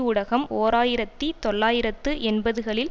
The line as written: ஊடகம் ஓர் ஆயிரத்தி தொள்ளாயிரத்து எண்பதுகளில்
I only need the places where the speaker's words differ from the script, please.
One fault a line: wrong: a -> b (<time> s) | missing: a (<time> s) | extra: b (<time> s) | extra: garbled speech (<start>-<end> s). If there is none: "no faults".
no faults